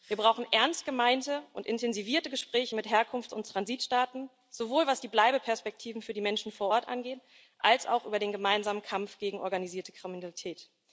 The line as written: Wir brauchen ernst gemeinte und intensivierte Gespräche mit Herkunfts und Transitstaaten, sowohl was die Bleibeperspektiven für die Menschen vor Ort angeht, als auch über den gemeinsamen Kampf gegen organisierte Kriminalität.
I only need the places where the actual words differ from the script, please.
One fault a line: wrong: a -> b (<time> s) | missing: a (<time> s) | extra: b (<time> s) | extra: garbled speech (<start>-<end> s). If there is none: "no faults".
no faults